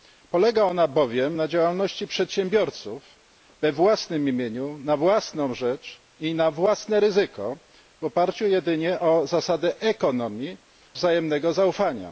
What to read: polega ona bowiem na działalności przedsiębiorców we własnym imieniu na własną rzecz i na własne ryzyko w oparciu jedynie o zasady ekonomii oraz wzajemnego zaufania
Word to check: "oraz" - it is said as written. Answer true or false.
false